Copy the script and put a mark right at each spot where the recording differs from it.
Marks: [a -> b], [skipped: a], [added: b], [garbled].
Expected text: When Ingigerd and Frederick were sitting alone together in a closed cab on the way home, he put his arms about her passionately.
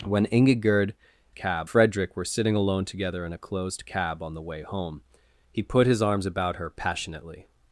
When Ingigerd [and -> cab] Frederick were sitting alone together in a closed cab on the way home, he put his arms about her passionately.